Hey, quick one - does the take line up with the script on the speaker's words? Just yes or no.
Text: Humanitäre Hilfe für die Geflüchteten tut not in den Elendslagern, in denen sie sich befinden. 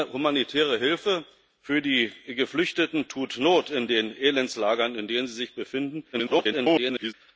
no